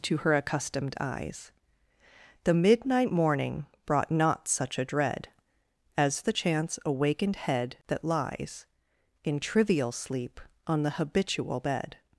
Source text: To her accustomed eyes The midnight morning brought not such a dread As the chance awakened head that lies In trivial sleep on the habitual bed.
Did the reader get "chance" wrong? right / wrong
right